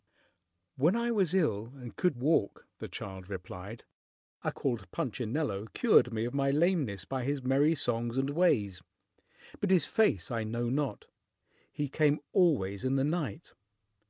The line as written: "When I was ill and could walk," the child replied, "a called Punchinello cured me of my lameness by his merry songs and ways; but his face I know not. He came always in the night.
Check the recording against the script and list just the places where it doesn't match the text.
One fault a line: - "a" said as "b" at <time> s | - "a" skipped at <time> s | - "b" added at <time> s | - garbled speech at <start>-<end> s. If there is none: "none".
none